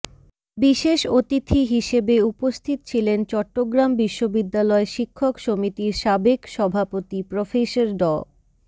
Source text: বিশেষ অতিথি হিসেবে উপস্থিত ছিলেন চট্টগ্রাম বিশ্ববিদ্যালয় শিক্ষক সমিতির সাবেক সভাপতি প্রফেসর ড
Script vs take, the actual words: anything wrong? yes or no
no